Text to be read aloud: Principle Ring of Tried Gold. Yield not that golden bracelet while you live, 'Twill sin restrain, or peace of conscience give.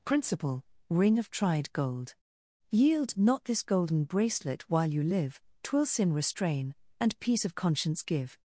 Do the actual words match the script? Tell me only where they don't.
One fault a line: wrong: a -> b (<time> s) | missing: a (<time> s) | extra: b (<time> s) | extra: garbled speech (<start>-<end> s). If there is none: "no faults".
wrong: that -> this (3.5 s)
wrong: or -> and (7.0 s)